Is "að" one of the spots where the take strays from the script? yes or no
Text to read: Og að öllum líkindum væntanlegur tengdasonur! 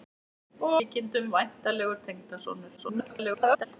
yes